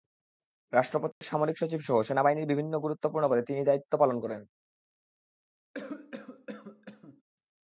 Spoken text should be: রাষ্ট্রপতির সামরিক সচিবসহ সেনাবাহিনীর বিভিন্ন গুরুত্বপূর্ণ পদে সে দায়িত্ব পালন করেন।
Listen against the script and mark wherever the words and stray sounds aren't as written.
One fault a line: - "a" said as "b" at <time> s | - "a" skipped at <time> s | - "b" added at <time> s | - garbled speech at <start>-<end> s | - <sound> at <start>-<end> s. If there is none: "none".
- dropout at 1.1-1.2 s
- "সে" said as "তিনি" at 3.4 s
- cough at 5.7-7.2 s